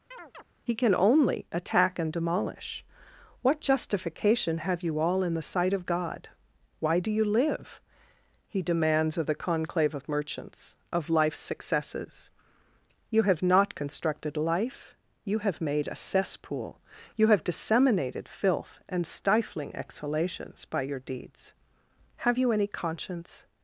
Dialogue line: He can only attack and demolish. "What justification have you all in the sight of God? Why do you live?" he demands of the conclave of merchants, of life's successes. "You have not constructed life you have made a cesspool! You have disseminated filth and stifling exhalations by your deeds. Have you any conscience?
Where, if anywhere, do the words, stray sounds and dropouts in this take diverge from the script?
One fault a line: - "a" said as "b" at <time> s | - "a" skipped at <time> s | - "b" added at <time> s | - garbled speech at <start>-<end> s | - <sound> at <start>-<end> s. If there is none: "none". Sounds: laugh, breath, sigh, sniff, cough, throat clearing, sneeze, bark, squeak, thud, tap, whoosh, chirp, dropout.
- chirp at 0.1-0.4 s